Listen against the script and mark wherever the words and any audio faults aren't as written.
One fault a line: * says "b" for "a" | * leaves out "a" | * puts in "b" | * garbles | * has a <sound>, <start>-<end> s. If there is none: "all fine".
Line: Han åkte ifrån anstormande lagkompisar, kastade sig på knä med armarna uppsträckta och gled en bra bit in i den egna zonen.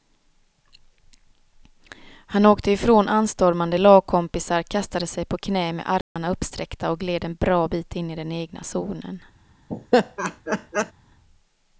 * has a dropout, 6.0-6.2 s
* has a laugh, 9.7-10.9 s